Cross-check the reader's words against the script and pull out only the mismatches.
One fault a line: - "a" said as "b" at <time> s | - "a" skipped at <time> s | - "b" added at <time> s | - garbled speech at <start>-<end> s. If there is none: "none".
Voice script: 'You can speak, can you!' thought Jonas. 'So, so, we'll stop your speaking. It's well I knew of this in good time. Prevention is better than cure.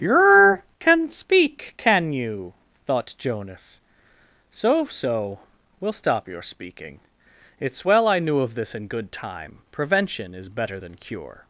none